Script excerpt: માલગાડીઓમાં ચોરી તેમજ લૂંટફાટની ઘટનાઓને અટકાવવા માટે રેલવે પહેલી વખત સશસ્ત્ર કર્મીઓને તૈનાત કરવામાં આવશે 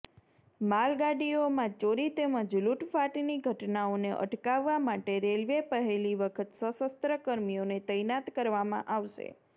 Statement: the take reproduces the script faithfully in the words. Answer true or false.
true